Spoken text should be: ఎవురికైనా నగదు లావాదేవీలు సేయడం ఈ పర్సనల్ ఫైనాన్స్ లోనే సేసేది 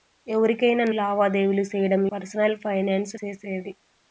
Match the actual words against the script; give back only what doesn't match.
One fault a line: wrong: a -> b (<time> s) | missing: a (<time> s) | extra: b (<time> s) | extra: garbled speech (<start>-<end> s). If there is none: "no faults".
missing: నగదు (0.8 s)
missing: ఈ (2.0 s)
missing: లోనే (3.1 s)